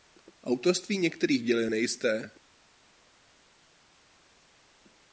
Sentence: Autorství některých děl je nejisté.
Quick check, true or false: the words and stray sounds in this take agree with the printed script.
true